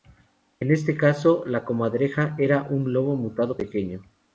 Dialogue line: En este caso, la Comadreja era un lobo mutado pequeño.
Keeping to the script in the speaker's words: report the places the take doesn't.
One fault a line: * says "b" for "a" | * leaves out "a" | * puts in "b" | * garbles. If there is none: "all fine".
all fine